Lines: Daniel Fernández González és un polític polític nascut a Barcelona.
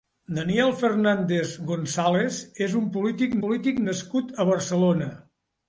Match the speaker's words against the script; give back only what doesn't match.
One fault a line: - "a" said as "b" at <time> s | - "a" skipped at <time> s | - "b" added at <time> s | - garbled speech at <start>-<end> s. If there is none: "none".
none